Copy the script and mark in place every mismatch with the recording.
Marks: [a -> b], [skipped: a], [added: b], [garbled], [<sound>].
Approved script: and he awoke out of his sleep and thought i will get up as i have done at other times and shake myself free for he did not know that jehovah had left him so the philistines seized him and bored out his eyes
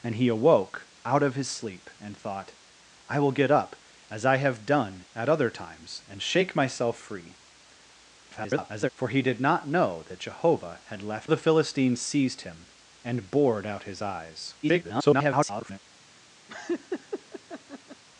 and he awoke out of his sleep and thought i will get up as i have done at other times and shake myself free [garbled] for he did not know that jehovah had left [skipped: him so] the philistines seized him and bored out his eyes [garbled] [laugh]